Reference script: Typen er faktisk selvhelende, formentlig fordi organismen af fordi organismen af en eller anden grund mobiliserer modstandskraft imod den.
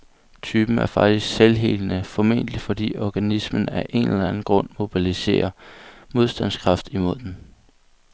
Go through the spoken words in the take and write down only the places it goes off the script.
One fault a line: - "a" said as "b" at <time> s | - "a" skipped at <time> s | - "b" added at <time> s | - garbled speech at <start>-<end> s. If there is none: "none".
- "fordi organismen af" skipped at 3.9 s